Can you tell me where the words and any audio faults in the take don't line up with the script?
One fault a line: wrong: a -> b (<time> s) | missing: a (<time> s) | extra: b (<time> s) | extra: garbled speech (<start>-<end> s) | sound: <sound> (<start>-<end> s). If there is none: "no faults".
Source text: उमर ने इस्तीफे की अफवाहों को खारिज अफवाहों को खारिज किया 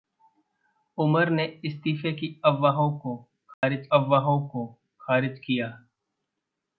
sound: dropout (3.5-3.6 s)